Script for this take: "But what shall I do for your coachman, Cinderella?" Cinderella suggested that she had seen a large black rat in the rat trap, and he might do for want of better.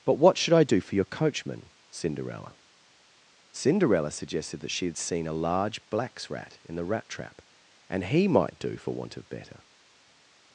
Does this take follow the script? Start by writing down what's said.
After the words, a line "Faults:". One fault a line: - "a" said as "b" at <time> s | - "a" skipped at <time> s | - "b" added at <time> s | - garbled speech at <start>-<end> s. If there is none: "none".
"But what should I do for your coachman, Cinderella?" Cinderella suggested that she had seen a large blacks rat in the rat trap, and he might do for want of better.
Faults:
- "shall" said as "should" at 0.4 s
- "black" said as "blacks" at 5.9 s